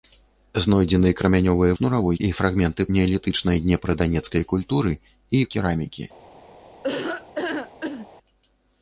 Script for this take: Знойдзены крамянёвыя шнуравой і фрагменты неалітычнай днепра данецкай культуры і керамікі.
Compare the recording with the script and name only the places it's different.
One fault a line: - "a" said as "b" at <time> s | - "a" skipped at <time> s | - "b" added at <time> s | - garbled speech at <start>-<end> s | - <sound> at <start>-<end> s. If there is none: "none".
- laugh at 6.8-8.1 s